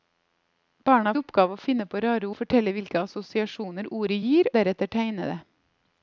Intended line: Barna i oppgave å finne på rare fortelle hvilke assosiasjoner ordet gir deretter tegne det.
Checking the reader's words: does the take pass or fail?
pass